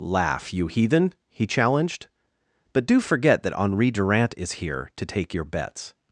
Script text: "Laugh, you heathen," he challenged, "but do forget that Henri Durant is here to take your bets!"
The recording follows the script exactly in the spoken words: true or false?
true